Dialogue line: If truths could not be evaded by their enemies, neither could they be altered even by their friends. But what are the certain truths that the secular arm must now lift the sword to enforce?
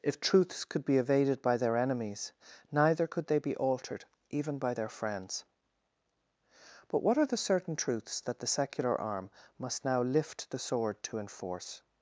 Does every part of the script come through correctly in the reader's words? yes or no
no